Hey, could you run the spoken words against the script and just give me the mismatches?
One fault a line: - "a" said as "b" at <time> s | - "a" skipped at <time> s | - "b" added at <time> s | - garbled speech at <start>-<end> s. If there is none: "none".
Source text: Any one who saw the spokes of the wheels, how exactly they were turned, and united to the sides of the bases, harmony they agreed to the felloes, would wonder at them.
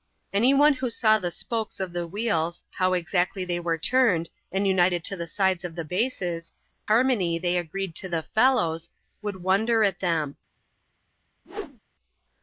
none